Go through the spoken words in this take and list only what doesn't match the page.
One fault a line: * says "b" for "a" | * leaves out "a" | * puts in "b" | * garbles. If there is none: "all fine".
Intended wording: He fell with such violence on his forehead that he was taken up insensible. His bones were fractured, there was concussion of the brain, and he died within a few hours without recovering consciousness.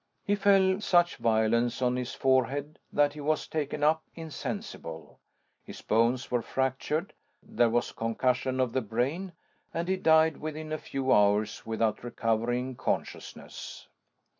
* leaves out "with"